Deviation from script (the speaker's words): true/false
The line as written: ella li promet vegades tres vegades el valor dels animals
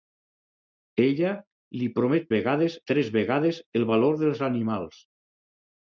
false